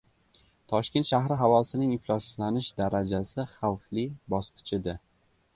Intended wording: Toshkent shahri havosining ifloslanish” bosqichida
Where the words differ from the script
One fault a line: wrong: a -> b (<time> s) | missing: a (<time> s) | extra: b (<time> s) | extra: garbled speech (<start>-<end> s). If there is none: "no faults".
extra: darajasi Xavfli (2.8 s)